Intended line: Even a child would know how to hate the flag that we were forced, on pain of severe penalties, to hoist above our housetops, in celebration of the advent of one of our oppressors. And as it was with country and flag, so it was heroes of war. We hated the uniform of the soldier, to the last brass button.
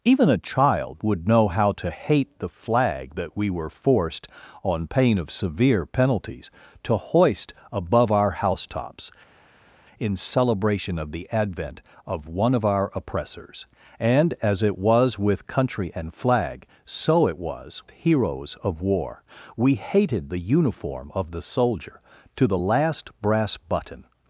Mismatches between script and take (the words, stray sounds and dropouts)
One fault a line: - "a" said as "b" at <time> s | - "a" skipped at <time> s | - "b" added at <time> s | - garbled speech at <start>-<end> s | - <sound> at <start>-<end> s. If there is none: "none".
none